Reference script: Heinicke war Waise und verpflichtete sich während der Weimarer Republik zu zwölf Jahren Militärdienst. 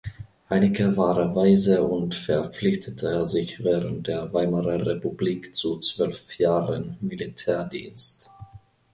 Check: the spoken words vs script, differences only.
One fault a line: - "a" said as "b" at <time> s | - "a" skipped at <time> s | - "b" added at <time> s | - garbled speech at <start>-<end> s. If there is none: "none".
none